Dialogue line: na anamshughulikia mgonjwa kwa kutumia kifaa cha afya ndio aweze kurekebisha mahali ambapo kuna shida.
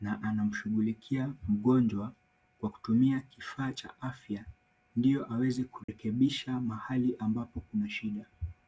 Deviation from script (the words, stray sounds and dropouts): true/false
true